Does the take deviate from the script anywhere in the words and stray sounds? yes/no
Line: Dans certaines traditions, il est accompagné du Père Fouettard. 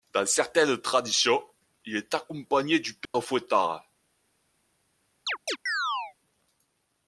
yes